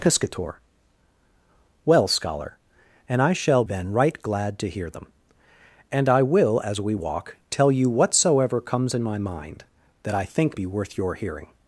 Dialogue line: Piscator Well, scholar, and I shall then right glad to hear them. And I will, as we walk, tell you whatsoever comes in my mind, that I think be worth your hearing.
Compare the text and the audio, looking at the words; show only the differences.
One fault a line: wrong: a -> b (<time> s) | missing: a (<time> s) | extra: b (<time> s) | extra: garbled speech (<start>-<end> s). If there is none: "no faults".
no faults